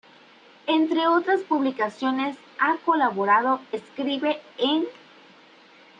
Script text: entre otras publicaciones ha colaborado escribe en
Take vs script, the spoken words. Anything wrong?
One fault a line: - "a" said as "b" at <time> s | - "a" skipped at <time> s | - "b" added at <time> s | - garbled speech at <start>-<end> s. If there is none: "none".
none